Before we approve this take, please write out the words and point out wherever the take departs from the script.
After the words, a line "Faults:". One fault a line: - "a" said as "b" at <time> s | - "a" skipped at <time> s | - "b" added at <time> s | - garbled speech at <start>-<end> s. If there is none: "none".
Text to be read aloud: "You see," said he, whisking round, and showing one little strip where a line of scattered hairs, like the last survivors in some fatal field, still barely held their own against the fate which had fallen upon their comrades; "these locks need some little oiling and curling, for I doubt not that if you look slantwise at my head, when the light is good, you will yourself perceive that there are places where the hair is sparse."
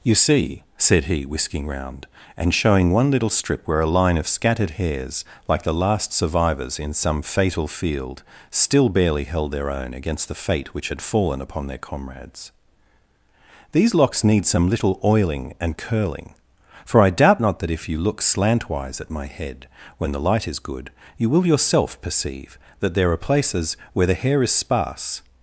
"You see," said he, whisking round, and showing one little strip where a line of scattered hairs, like the last survivors in some fatal field, still barely held their own against the fate which had fallen upon their comrades; "these locks need some little oiling and curling, for I doubt not that if you look slantwise at my head, when the light is good, you will yourself perceive that there are places where the hair is sparse."
Faults:
none